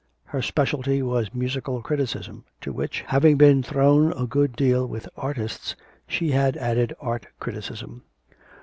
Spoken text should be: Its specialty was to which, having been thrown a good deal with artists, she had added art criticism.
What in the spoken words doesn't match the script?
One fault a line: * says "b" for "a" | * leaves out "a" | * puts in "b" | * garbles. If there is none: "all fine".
* says "Her" for "Its"
* puts in "musical criticism"